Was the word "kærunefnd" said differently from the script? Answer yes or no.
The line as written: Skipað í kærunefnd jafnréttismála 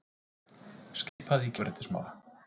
yes